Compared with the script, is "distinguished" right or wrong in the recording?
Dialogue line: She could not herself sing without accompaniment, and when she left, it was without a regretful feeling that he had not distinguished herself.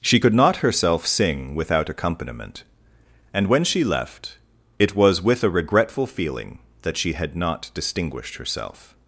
right